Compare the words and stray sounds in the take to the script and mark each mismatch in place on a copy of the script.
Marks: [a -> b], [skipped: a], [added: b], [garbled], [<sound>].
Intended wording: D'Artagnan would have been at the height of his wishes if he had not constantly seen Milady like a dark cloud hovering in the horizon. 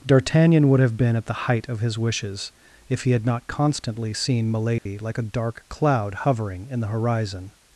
D'Artagnan would have been at the height of his wishes if he had not constantly seen Milady [dropout] like a dark cloud hovering in the horizon.